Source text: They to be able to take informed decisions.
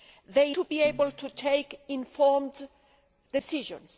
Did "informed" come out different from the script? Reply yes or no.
no